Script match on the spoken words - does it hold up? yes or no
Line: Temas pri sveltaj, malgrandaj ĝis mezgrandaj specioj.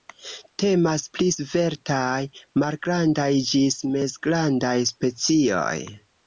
yes